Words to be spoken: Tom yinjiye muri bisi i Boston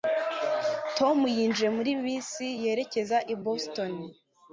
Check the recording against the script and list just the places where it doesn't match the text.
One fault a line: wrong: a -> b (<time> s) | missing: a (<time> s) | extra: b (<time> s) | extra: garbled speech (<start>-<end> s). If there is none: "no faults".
extra: yerekeza (2.6 s)